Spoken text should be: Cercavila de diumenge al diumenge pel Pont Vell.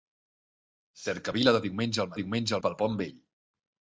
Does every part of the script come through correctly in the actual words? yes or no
yes